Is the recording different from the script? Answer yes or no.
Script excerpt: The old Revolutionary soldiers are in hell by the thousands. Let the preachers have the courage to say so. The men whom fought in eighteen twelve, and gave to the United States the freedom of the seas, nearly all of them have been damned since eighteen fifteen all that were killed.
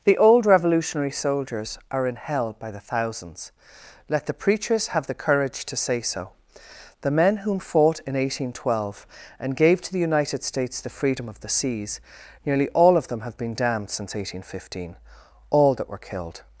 no